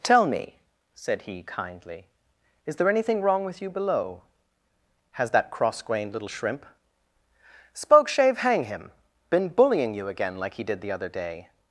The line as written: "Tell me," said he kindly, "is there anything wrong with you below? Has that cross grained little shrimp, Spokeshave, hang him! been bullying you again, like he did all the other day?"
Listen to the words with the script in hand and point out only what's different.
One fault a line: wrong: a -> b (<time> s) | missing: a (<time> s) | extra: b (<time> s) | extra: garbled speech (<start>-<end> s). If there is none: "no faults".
missing: all (10.8 s)